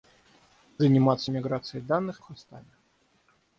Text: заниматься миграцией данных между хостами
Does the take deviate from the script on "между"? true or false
true